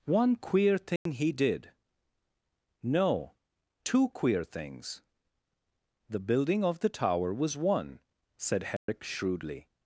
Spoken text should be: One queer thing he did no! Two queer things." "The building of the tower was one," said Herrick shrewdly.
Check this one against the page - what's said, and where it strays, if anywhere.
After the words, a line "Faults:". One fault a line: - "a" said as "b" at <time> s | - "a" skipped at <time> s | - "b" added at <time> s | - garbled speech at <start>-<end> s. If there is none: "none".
One queer thing he did no! Two queer things." "The building of the tower was one," said Herrick shrewdly.
Faults:
none